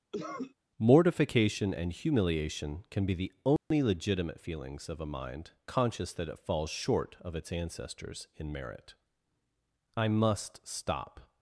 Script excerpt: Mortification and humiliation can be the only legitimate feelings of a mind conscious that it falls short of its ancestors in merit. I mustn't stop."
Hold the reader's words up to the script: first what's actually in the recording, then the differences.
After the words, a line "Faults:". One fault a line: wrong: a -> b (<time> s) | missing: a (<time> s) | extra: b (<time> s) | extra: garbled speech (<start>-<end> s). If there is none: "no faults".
Mortification and humiliation can be the only legitimate feelings of a mind conscious that it falls short of its ancestors in merit. I must stop."
Faults:
wrong: mustn't -> must (10.1 s)